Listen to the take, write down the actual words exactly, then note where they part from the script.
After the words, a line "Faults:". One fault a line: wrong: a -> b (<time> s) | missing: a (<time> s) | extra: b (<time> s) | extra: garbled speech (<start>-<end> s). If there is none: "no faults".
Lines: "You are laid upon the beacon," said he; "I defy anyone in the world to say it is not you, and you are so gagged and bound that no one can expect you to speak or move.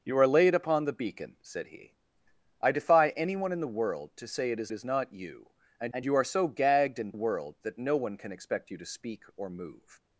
"You are laid upon the beacon," said he; "I defy anyone in the world to say it is is not you, and and you are so gagged and world that no one can expect you to speak or move.
Faults:
extra: is (4.7 s)
extra: and (5.9 s)
wrong: bound -> world (7.1 s)